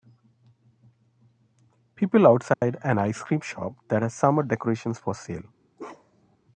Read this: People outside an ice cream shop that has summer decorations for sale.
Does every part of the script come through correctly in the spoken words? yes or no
yes